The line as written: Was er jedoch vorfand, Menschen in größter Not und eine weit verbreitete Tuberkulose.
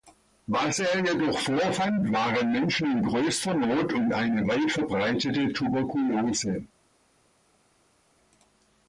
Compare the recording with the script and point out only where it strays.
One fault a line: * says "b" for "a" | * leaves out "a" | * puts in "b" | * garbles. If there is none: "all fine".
* puts in "waren"